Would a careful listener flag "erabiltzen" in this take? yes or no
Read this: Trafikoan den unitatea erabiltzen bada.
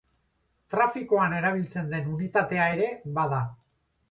yes